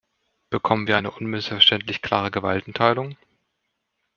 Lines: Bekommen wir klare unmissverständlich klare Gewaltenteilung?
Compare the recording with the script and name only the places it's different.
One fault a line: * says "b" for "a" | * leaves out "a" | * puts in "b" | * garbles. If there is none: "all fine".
* says "eine" for "klare"